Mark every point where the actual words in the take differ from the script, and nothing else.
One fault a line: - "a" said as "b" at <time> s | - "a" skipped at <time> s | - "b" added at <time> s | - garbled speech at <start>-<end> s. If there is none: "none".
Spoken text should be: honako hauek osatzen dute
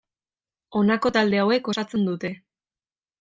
- "talde" added at 1.2 s